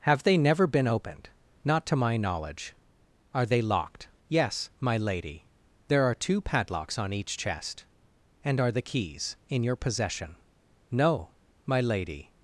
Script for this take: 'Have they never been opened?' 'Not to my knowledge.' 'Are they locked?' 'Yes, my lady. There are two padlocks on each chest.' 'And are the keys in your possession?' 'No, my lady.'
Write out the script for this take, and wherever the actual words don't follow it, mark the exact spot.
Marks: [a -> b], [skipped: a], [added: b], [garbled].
'Have they never been opened?' 'Not to my knowledge.' 'Are they locked?' 'Yes, my lady. There are two padlocks on each chest.' 'And are the keys in your possession?' 'No, my lady.'